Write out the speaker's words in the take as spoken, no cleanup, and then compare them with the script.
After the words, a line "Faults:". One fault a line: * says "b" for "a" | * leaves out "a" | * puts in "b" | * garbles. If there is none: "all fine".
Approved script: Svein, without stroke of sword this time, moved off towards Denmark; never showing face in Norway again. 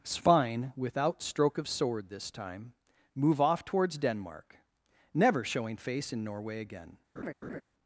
Svein, without stroke of sword this time, move off towards Denmark; never showing face in Norway again.
Faults:
* says "move" for "moved"